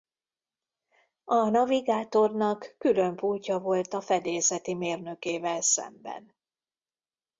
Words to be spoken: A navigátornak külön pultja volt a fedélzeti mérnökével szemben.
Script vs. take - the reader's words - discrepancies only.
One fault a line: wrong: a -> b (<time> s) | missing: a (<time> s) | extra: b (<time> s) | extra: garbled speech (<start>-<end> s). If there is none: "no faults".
no faults